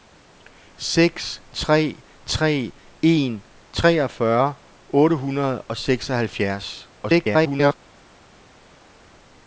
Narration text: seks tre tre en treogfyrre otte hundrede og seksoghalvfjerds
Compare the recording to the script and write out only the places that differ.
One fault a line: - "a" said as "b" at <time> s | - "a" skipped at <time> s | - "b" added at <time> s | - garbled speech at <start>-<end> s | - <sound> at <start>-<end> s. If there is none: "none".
- garbled speech at 7.0-7.7 s